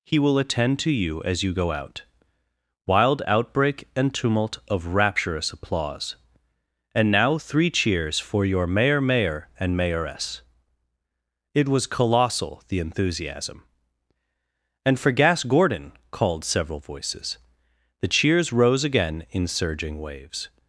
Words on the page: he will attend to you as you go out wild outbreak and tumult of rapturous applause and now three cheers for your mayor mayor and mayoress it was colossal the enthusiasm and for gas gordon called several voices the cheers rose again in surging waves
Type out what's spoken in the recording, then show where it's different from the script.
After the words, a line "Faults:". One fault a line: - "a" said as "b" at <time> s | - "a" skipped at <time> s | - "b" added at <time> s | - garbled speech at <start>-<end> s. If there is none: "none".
he will attend to you as you go out wild outbreak and tumult of rapturous applause and now three cheers for your mayor mayor and mayoress it was colossal the enthusiasm and for gas gordon called several voices the cheers rose again in surging waves
Faults:
none